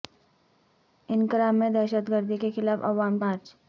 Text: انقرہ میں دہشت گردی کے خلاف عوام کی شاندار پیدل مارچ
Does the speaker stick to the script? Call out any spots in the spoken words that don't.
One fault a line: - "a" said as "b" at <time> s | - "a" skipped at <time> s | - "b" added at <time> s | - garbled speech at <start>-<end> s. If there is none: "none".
- "کی شاندار پیدل" skipped at 3.2 s